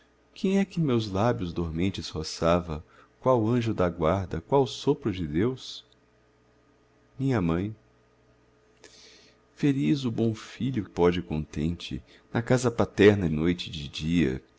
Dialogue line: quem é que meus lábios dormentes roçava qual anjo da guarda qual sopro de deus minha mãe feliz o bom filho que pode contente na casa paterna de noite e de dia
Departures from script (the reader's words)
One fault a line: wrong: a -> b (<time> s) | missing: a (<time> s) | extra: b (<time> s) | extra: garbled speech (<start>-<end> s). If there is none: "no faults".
missing: que (10.8 s)
missing: de (13.3 s)